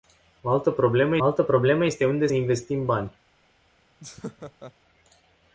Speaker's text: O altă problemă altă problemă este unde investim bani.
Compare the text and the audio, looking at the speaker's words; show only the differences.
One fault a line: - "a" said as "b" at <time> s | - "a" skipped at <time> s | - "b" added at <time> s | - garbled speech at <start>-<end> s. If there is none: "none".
none